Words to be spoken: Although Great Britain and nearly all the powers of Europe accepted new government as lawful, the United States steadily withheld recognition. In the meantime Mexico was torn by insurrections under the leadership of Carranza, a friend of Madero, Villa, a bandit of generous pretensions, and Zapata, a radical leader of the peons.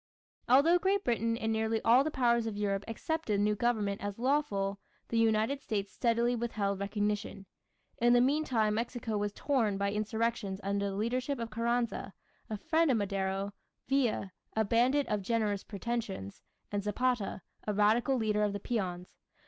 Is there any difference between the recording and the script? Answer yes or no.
no